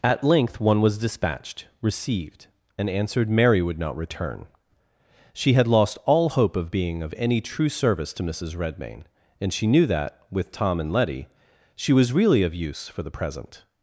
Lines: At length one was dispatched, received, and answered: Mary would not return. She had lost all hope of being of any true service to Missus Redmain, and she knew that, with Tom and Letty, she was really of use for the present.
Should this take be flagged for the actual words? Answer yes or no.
no